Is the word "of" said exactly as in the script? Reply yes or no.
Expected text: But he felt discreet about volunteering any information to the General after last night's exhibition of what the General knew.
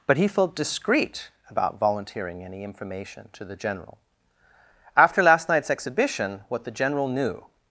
no